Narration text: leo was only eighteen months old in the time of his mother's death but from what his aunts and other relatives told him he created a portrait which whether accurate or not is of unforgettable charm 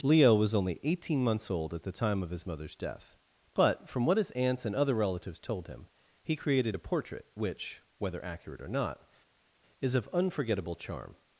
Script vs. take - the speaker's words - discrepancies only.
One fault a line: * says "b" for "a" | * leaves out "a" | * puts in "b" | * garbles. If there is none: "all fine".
* says "at" for "in"